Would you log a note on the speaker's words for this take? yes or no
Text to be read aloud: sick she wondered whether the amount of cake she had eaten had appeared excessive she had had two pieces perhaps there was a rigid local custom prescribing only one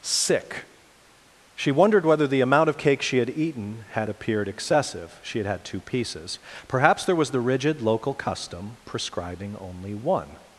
yes